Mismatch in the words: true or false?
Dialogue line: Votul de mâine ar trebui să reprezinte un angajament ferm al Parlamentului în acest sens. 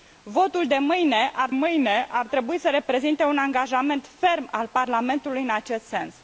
true